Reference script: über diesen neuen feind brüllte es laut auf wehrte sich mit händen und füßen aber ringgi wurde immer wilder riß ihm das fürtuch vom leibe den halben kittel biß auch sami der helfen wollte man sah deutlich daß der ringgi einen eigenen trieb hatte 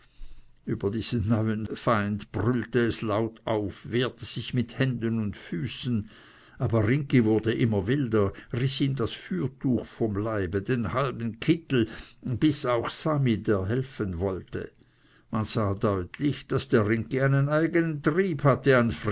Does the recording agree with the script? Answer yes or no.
yes